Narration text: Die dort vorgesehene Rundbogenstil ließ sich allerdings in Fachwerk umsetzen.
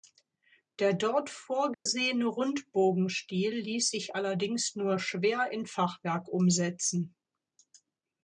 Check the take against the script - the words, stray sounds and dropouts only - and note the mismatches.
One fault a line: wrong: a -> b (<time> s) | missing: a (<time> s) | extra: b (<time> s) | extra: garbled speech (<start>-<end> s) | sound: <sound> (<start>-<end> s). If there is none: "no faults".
wrong: Die -> Der (0.8 s)
sound: dropout (1.7-1.9 s)
extra: nur schwer (4.8 s)